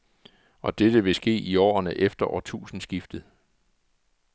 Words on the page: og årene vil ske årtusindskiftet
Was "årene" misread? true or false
true